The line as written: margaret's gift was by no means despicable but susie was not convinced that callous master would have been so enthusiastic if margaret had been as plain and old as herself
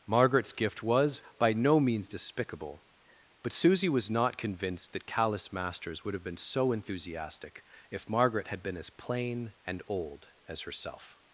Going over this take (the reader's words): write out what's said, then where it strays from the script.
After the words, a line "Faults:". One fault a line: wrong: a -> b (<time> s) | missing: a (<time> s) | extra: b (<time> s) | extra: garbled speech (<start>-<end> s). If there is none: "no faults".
margaret's gift was by no means despicable but susie was not convinced that callous masters would have been so enthusiastic if margaret had been as plain and old as herself
Faults:
wrong: master -> masters (5.5 s)